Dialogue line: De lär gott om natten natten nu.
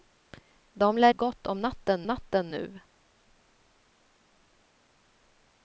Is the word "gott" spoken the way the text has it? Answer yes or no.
yes